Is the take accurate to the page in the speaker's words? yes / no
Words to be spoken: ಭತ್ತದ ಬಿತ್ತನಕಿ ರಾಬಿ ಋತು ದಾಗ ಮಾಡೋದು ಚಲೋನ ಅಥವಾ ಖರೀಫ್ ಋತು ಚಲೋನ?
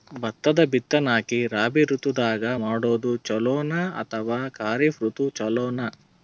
yes